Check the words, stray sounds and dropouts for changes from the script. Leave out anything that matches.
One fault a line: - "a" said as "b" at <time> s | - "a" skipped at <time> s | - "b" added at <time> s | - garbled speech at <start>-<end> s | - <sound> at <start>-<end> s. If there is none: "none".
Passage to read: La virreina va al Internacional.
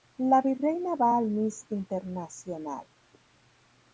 - "Miss" added at 1.3 s